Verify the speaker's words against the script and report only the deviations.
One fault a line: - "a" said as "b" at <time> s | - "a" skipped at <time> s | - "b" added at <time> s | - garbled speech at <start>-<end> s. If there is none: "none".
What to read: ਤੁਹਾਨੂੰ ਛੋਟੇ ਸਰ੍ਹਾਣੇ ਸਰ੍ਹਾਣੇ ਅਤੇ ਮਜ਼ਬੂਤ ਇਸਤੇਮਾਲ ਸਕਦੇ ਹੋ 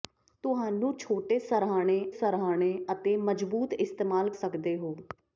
none